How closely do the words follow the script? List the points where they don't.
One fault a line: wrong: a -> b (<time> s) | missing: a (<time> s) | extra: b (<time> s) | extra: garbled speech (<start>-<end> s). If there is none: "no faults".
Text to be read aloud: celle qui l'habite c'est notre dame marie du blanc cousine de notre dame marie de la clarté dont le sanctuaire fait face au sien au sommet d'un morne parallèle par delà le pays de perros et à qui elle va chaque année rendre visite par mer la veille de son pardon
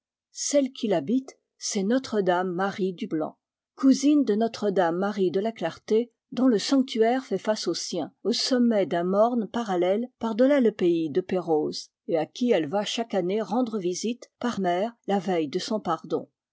no faults